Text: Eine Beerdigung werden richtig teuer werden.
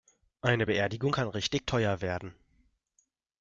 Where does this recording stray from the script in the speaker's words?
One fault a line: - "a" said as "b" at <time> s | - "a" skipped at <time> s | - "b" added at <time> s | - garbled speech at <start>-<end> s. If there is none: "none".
- "werden" said as "kann" at 1.1 s